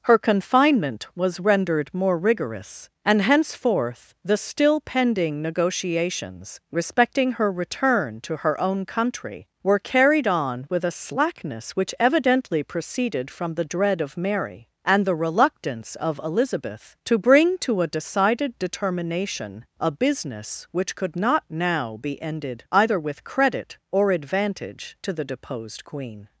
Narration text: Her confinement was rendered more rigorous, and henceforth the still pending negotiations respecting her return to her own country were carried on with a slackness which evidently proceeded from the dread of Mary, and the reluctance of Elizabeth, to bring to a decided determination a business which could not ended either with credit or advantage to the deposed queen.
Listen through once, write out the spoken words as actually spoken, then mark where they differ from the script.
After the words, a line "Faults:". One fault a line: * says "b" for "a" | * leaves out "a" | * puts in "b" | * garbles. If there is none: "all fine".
Her confinement was rendered more rigorous, and henceforth the still pending negotiations respecting her return to her own country were carried on with a slackness which evidently proceeded from the dread of Mary, and the reluctance of Elizabeth, to bring to a decided determination a business which could not now be ended either with credit or advantage to the deposed queen.
Faults:
* puts in "now be"